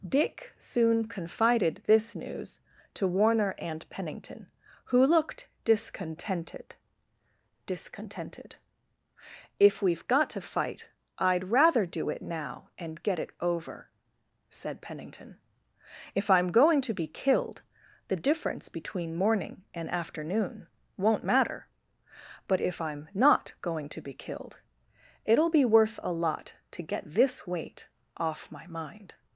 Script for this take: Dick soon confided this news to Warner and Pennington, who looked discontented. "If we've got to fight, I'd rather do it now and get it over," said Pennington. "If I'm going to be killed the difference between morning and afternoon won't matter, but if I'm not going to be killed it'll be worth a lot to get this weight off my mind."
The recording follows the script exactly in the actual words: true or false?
false